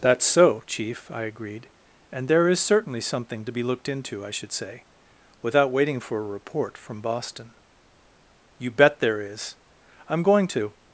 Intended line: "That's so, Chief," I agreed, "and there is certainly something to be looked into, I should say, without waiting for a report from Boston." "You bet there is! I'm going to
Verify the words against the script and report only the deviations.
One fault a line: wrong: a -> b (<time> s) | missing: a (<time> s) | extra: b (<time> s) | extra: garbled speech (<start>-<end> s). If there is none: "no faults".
no faults